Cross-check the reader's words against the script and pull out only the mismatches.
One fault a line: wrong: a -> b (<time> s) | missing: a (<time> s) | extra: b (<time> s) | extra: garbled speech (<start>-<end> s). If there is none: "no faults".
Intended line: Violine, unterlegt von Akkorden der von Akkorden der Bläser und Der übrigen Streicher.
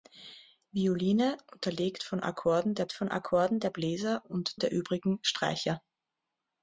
no faults